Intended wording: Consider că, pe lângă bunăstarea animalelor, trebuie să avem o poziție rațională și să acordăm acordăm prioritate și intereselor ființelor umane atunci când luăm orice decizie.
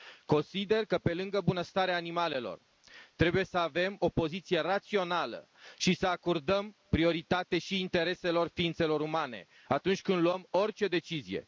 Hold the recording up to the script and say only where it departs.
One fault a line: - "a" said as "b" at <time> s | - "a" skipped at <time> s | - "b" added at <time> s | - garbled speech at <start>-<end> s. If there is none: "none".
- "acordăm" skipped at 6.8 s